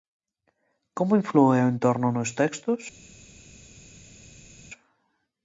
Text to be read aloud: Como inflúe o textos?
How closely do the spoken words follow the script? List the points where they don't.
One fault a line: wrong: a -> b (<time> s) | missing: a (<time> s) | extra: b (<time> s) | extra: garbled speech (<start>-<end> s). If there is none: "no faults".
extra: entorno nos (1.7 s)